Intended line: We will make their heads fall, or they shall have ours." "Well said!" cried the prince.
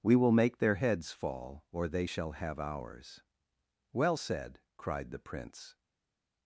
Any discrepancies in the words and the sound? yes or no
no